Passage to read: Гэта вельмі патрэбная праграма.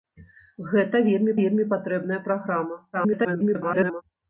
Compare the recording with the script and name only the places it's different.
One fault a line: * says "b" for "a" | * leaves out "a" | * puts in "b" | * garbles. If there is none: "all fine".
* puts in "вельмі"
* garbles